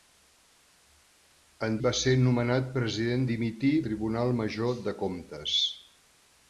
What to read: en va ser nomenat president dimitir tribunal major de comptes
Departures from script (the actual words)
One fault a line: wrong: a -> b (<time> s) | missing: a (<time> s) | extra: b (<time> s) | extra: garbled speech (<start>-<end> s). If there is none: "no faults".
no faults